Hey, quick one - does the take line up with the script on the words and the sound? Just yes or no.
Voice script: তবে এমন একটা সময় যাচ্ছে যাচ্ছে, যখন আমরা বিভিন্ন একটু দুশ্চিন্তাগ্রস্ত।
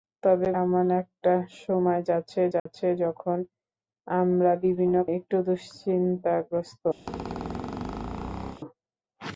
no